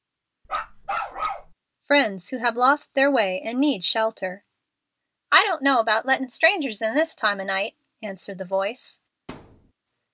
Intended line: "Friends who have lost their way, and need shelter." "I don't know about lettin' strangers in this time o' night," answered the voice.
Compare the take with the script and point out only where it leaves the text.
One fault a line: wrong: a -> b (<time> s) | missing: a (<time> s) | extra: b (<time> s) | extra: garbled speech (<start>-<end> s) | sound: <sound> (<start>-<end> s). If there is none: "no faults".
sound: bark (0.4-1.5 s)
sound: thud (9.3-9.7 s)